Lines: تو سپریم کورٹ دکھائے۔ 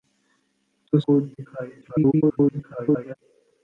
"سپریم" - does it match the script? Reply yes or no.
no